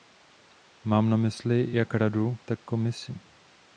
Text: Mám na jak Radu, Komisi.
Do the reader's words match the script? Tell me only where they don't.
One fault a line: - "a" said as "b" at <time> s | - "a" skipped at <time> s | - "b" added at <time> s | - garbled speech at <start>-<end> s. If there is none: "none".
- "mysli" added at 1.2 s
- "tak" added at 2.5 s